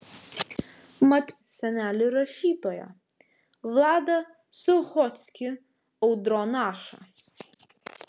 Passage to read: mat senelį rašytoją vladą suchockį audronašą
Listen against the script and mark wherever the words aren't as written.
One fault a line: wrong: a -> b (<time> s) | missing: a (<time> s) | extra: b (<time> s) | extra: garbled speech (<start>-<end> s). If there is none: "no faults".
no faults